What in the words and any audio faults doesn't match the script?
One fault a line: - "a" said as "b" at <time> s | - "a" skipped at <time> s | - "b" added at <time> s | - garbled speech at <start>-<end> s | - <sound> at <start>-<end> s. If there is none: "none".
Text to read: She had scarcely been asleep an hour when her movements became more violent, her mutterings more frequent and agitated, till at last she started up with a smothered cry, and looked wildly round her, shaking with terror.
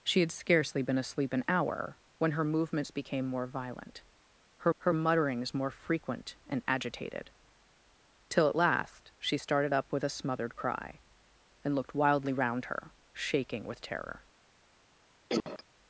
- "her" added at 4.8 s
- cough at 15.3-15.6 s